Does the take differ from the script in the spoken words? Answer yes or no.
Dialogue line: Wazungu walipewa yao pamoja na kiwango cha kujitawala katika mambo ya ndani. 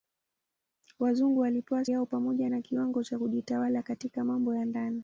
no